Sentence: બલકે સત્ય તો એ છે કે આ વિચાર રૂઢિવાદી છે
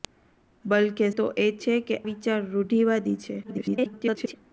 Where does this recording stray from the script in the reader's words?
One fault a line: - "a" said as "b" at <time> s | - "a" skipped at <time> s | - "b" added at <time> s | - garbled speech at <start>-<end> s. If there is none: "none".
- "સત્ય" skipped at 1.1 s
- "આ" skipped at 2.0 s
- garbled speech at 3.4-4.3 s